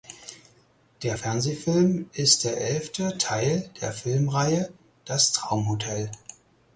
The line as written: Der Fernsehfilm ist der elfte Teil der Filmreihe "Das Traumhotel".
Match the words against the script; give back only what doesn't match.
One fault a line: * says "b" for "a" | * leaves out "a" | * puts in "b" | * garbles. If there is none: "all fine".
all fine